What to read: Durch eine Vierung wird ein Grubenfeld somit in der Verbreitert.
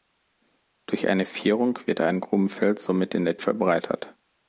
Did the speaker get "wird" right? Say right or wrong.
right